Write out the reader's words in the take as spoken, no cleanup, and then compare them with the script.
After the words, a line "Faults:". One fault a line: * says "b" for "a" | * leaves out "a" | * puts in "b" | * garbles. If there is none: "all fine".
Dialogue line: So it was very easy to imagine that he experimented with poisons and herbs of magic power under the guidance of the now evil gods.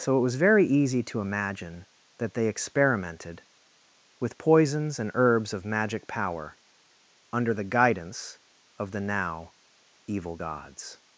So it was very easy to imagine that they experimented with poisons and herbs of magic power under the guidance of the now evil gods.
Faults:
* says "they" for "he"